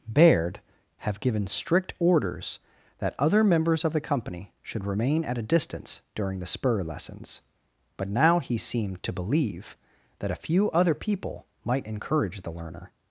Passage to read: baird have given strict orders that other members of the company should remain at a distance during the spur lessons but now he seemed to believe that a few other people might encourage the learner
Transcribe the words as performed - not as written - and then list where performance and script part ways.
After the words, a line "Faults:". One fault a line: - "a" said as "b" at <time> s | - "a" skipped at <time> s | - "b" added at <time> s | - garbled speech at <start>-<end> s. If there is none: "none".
baird have given strict orders that other members of the company should remain at a distance during the spur lessons but now he seemed to believe that a few other people might encourage the learner
Faults:
none